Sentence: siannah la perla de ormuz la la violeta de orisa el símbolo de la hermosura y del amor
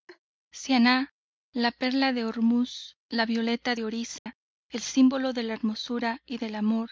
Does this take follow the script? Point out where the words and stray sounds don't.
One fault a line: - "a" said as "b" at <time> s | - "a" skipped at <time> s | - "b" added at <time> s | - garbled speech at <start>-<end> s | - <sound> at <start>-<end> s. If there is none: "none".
- laugh at 0.1-0.2 s
- "la" skipped at 3.2 s
- dropout at 4.2-4.3 s